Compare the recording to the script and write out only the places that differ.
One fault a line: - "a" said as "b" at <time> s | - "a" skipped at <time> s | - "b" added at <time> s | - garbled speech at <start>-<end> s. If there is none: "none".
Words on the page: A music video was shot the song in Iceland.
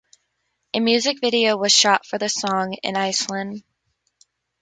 - "for" added at 2.0 s